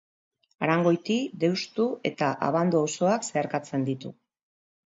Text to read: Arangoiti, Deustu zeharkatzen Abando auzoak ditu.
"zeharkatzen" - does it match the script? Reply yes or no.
no